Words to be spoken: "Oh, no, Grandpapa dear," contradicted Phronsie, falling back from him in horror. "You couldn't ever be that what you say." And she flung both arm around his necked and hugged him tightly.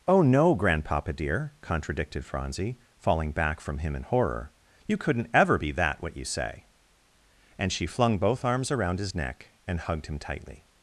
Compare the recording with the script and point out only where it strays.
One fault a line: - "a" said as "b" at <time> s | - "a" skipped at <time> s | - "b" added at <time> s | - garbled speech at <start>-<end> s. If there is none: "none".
- "arm" said as "arms" at 8.4 s
- "necked" said as "neck" at 9.1 s